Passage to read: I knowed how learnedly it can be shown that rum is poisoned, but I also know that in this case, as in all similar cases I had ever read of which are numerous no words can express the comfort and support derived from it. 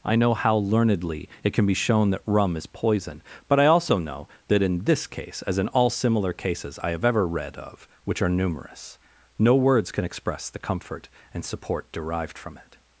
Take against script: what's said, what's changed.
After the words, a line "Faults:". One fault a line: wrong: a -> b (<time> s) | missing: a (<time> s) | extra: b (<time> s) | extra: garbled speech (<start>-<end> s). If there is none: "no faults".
I know how learnedly it can be shown that rum is poison, but I also know that in this case, as in all similar cases I have ever read of which are numerous no words can express the comfort and support derived from it.
Faults:
wrong: knowed -> know (0.1 s)
wrong: poisoned -> poison (2.6 s)
wrong: had -> have (6.9 s)